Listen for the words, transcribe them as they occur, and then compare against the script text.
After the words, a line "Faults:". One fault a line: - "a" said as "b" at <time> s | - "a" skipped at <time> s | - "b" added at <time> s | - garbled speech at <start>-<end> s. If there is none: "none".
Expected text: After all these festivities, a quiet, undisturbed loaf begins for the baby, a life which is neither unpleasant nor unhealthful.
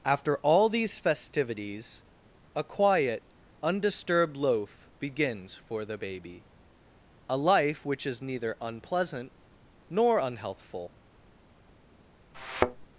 After all these festivities, a quiet, undisturbed loaf begins for the baby, a life which is neither unpleasant nor unhealthful.
Faults:
none